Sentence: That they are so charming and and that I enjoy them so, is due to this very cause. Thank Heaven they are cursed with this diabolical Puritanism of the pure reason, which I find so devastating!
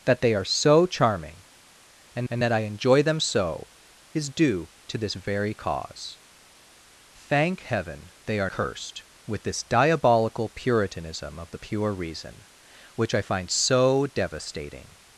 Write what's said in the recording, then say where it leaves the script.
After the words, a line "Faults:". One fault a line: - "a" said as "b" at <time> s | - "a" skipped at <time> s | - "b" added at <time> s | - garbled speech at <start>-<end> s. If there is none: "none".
That they are so charming and and that I enjoy them so, is due to this very cause. Thank Heaven they are cursed with this diabolical Puritanism of the pure reason, which I find so devastating!
Faults:
none